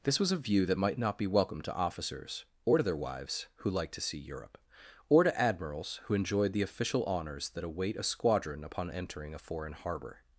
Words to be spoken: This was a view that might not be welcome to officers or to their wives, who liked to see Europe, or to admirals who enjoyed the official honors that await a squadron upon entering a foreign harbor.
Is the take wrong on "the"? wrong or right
right